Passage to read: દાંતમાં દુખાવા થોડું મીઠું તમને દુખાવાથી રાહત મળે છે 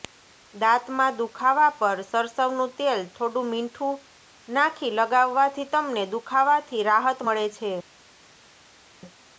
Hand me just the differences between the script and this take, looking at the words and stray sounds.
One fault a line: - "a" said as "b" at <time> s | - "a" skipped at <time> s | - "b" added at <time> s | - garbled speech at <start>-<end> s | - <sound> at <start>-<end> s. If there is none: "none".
- "પર સરસવનું તેલ" added at 1.8 s
- "નાખી લગાવવાથી" added at 4.5 s